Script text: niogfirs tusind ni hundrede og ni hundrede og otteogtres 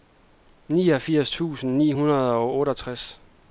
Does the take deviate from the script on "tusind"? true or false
false